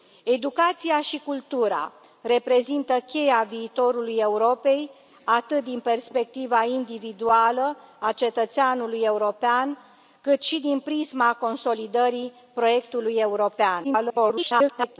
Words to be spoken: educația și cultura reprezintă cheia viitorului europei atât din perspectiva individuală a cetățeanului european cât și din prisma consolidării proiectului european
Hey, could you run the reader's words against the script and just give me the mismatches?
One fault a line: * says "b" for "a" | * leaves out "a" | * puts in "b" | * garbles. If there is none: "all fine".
* garbles